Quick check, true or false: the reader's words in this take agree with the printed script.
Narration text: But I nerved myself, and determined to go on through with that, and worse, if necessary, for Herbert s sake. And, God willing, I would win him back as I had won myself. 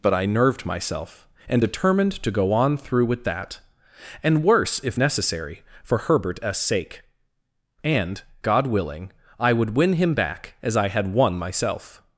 true